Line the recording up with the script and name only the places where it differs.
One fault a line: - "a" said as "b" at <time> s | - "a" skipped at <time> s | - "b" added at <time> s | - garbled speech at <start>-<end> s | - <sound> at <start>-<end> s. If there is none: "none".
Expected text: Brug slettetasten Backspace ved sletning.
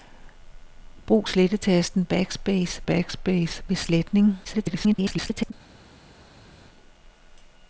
- "Backspace" added at 2.8 s
- garbled speech at 4.4-5.5 s